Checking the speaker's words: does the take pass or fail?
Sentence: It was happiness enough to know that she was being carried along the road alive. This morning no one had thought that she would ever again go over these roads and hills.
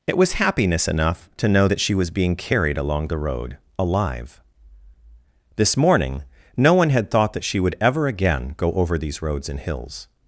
pass